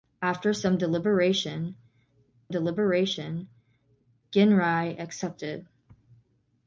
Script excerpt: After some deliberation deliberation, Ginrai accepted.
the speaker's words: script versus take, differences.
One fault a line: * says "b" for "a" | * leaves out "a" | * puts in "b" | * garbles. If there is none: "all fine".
all fine